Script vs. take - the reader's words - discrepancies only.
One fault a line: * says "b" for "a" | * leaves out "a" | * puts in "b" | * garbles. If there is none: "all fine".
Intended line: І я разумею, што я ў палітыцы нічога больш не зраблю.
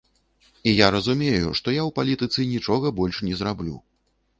all fine